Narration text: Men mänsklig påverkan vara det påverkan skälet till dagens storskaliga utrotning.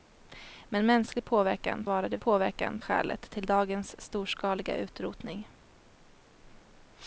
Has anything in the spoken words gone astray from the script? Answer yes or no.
no